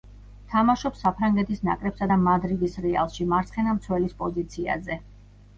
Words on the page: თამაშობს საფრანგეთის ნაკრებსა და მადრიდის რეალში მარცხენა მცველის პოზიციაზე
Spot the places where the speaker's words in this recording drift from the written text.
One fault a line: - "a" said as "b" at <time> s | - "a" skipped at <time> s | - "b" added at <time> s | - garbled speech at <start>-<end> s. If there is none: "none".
none